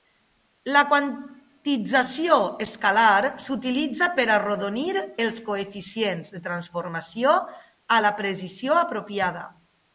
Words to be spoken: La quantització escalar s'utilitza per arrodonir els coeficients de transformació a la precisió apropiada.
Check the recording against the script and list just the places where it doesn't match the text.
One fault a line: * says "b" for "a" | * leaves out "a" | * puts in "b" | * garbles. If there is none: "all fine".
all fine